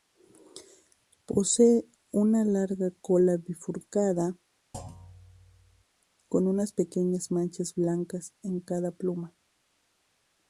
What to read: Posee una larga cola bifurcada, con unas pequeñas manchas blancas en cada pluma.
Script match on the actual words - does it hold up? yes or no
yes